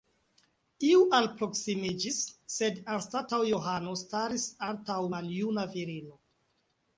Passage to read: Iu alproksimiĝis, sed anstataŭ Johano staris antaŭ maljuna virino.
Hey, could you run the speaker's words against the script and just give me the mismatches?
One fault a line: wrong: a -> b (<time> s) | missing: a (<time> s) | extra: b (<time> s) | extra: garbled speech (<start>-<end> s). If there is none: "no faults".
no faults